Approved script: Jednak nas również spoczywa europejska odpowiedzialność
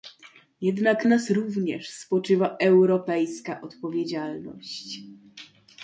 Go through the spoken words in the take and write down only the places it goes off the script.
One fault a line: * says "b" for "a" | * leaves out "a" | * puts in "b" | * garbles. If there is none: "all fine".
all fine